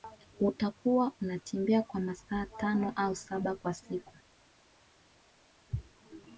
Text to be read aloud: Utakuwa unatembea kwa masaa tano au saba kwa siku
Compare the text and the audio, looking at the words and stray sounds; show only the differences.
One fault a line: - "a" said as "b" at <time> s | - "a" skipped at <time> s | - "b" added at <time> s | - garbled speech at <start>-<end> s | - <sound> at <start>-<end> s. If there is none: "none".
none